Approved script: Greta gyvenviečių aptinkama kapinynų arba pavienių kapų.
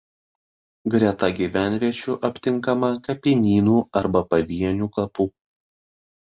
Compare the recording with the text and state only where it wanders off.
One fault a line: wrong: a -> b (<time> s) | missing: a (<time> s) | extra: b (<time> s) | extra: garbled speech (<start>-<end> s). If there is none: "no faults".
no faults